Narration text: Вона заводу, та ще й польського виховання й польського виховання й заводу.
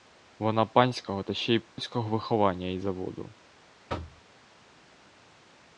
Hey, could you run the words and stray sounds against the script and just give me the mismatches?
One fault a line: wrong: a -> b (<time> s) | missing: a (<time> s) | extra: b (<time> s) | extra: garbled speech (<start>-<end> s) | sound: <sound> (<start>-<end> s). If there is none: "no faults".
wrong: заводу -> панського (0.7 s)
sound: dropout (1.7-1.8 s)
missing: польського виховання й (2.8 s)
sound: thud (3.9-4.2 s)